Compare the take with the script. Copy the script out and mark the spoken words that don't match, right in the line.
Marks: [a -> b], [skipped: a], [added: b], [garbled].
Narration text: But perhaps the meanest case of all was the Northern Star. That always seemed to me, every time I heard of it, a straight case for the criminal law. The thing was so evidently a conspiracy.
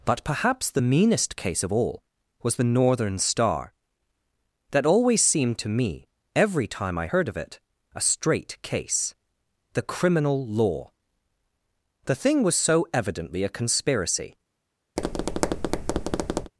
But perhaps the meanest case of all was the Northern Star. That always seemed to me, every time I heard of it, a straight case [skipped: for] the criminal law. The thing was so evidently a conspiracy.